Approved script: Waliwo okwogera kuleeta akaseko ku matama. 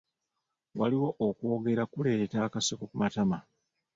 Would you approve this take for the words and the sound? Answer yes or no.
yes